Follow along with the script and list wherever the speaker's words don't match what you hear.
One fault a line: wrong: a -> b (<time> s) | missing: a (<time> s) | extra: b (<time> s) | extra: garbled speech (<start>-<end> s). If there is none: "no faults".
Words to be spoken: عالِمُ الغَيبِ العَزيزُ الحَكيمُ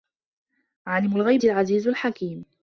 no faults